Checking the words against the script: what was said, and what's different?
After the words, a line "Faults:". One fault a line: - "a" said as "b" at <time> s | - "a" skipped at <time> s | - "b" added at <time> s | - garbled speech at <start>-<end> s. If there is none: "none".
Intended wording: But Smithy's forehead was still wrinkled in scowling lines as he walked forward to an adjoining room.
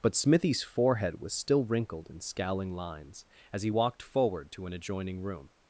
But Smithy's forehead was still wrinkled in scowling lines as he walked forward to an adjoining room.
Faults:
none